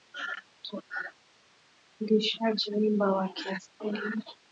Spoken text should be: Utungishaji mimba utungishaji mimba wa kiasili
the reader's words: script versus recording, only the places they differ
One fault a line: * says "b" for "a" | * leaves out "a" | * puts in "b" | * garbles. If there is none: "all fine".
* leaves out "utungishaji mimba"